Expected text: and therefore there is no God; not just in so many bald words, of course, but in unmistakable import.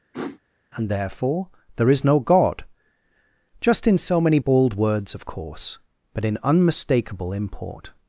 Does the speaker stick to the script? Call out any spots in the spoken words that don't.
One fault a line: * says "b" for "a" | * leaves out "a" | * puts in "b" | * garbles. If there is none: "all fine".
* leaves out "not"